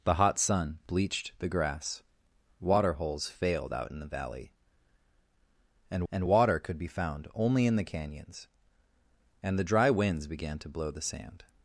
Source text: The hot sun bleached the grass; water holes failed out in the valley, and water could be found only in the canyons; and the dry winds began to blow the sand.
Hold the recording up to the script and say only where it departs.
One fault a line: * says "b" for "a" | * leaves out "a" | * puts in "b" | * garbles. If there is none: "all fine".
* puts in "and"